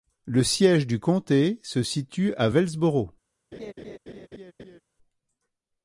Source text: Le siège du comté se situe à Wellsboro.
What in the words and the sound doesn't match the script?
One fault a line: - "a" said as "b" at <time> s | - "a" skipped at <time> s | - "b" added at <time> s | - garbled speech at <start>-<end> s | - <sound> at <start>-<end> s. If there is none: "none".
- laugh at 3.5-4.8 s